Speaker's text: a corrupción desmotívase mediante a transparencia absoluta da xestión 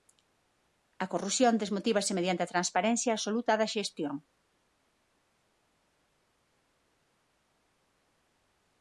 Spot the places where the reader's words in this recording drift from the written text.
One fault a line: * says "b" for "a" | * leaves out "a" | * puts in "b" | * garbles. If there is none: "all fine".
all fine